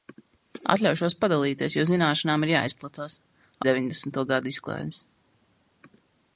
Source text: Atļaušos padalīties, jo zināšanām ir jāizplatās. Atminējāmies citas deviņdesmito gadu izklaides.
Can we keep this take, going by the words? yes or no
no